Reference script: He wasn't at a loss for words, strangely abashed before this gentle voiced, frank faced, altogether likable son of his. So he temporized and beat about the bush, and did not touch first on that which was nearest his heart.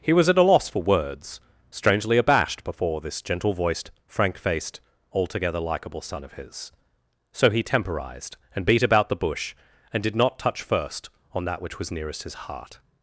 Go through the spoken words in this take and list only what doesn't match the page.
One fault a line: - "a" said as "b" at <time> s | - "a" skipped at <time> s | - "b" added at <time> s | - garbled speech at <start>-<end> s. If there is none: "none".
- "wasn't" said as "was" at 0.1 s